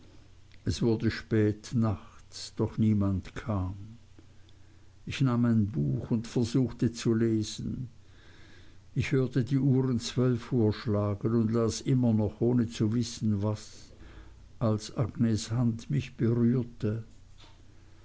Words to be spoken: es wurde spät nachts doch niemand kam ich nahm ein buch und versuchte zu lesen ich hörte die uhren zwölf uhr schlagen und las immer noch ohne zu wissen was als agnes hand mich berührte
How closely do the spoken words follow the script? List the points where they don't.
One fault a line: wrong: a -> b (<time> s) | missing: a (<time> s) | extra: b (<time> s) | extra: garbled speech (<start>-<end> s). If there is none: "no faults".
no faults